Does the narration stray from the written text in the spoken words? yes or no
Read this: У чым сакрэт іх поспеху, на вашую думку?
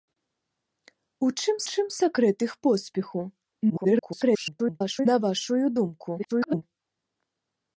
yes